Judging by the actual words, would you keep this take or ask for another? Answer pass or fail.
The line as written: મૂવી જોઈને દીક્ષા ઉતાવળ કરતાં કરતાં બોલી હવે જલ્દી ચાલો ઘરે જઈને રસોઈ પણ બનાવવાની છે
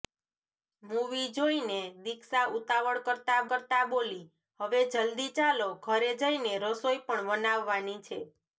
pass